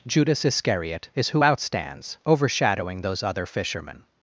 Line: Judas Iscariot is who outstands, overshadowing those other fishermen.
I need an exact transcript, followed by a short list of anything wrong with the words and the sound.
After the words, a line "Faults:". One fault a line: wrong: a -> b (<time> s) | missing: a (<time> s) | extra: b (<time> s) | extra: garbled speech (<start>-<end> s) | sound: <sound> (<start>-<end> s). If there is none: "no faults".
Judas Iscariot is who outstands, overshadowing those other fishermen.
Faults:
no faults